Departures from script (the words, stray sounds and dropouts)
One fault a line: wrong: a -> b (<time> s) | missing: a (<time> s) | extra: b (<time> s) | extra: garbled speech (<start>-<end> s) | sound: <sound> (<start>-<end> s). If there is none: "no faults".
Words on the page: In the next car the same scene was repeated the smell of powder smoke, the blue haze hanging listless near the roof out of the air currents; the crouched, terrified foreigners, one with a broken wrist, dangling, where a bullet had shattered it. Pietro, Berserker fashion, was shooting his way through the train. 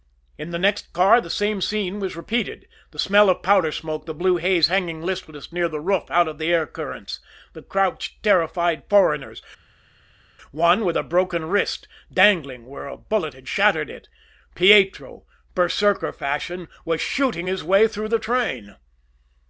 no faults